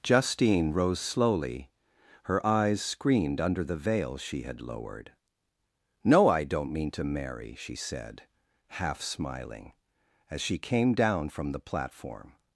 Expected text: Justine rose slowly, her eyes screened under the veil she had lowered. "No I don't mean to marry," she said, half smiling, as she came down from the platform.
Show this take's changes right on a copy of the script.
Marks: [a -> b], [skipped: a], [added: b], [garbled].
Justine rose slowly, her eyes screened under the veil she had lowered. "No I don't mean to marry," she said, half smiling, as she came down from the platform.